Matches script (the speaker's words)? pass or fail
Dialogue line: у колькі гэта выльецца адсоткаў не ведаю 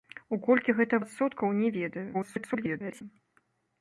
fail